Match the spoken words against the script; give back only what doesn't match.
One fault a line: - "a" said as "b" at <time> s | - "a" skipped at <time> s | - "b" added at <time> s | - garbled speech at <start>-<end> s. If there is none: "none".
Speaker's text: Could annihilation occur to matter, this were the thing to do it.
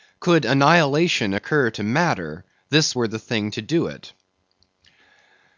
none